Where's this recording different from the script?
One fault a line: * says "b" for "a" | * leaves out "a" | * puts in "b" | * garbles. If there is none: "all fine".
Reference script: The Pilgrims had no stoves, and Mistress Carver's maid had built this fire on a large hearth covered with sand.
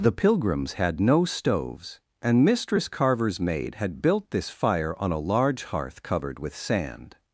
all fine